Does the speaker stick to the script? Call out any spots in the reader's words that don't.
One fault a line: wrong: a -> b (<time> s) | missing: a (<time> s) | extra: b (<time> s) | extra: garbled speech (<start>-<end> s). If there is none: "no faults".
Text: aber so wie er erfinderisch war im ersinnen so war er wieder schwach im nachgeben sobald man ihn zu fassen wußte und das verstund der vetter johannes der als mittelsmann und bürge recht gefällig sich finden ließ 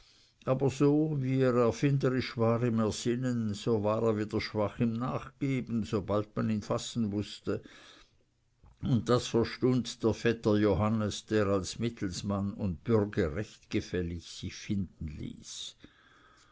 missing: zu (6.6 s)